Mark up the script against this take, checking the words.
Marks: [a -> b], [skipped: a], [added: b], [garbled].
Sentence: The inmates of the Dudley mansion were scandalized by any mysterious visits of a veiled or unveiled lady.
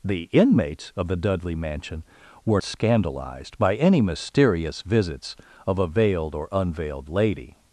The inmates of the Dudley mansion were scandalized by any mysterious visits of a veiled or unveiled lady.